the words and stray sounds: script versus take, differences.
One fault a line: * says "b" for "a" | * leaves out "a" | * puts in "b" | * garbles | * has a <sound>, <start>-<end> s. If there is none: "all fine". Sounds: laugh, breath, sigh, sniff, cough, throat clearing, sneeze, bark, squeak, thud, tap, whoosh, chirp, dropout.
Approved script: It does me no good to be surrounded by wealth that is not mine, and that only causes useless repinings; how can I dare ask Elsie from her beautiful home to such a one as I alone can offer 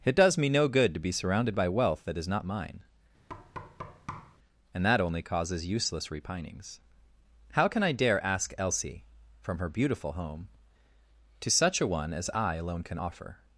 * has a thud, 3.3-4.4 s